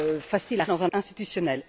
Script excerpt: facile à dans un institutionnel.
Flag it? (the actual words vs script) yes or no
no